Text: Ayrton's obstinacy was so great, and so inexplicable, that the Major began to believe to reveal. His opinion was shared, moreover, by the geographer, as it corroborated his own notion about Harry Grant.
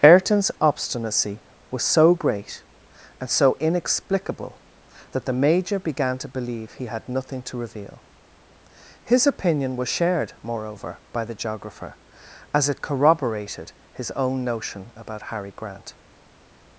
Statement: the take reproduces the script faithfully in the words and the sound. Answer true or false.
false